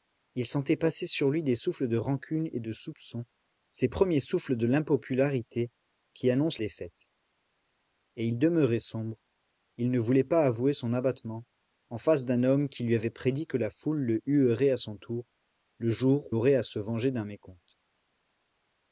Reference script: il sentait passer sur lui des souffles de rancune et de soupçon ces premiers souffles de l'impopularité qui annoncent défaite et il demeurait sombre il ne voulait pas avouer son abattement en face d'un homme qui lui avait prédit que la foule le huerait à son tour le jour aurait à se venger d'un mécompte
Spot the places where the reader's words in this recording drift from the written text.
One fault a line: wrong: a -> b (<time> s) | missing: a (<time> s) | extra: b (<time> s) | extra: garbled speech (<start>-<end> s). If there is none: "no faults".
no faults